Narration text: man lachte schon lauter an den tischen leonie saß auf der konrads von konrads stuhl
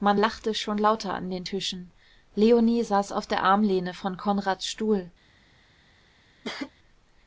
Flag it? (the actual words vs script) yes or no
yes